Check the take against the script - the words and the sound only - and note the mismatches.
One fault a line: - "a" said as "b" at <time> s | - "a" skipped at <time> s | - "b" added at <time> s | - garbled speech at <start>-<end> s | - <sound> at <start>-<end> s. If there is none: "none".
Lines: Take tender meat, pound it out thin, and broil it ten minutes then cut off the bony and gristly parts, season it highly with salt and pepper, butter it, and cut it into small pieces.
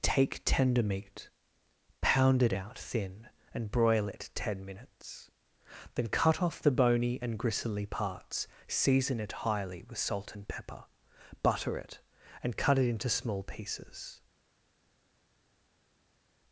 none